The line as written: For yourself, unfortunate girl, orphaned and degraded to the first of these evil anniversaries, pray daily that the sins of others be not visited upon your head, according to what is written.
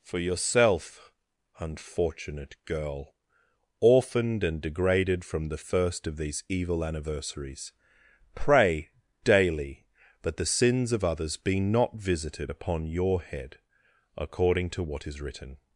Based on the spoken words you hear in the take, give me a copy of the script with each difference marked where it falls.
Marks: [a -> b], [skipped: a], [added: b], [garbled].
For yourself, unfortunate girl, orphaned and degraded [to -> from] the first of these evil anniversaries, pray daily that the sins of others be not visited upon your head, according to what is written.